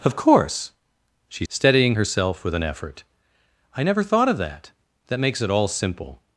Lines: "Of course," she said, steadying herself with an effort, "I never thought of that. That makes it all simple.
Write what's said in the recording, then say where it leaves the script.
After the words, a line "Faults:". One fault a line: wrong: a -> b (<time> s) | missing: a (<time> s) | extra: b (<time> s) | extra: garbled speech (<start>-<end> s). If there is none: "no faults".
"Of course," she steadying herself with an effort, "I never thought of that. That makes it all simple.
Faults:
missing: said (1.4 s)